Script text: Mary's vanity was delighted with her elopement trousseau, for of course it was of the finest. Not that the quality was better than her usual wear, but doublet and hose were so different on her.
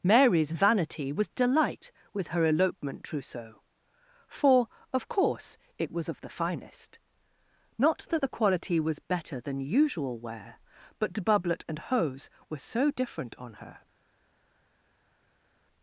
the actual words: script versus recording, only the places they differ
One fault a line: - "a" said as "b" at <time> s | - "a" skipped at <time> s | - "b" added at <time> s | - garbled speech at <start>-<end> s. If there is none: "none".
- "delighted" said as "delight" at 1.3 s
- "her" skipped at 9.6 s